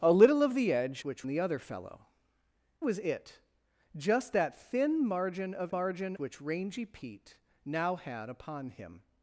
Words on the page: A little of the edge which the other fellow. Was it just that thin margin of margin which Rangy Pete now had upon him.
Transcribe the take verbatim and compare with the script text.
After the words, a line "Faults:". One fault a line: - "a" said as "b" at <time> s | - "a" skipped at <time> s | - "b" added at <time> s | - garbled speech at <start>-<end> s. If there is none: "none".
A little of the edge which the other fellow. Was it just that thin margin of margin which Rangy Pete now had upon him.
Faults:
none